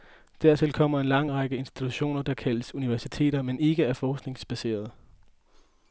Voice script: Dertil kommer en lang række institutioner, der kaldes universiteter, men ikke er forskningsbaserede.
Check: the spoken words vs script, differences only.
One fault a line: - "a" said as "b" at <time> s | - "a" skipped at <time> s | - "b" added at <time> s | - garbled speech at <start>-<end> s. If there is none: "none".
none